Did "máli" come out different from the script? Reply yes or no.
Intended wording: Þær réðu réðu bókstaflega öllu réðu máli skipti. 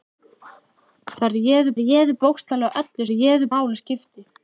no